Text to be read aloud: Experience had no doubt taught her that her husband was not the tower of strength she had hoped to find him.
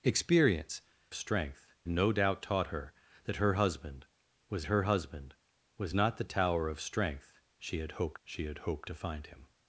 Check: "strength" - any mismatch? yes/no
no